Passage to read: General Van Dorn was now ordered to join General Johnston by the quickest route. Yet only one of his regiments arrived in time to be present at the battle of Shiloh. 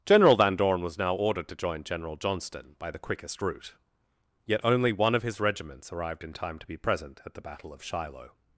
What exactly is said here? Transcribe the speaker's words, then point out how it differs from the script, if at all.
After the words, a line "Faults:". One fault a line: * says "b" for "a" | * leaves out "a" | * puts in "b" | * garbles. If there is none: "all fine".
General Van Dorn was now ordered to join General Johnston by the quickest route. Yet only one of his regiments arrived in time to be present at the battle of Shiloh.
Faults:
all fine